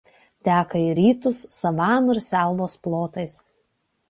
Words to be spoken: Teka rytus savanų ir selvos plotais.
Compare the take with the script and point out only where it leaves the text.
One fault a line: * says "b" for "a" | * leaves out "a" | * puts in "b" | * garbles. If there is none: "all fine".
* puts in "į"